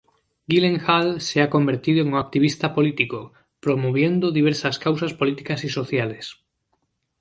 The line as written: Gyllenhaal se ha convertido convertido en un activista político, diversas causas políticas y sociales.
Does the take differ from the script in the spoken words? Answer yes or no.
yes